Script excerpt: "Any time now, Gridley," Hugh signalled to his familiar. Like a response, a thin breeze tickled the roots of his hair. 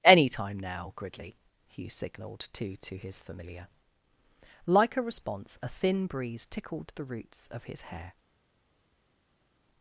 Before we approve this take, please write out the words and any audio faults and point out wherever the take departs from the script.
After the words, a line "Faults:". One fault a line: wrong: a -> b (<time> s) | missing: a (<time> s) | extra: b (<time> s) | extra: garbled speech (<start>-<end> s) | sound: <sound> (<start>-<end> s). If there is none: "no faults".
"Any time now, Gridley," Hugh signalled to to his familiar. Like a response, a thin breeze tickled the roots of his hair.
Faults:
extra: to (2.8 s)